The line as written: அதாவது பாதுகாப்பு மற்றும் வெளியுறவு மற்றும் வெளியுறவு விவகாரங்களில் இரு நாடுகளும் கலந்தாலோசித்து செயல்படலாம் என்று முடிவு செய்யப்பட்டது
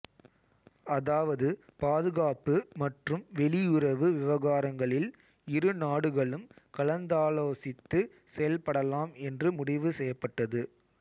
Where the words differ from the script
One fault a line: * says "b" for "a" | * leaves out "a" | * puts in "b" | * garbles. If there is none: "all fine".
* leaves out "மற்றும் வெளியுறவு"